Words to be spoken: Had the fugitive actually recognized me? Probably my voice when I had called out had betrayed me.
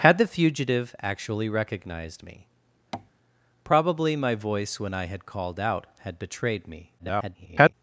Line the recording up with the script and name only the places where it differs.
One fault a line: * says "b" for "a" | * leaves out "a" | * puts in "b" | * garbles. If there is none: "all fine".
* garbles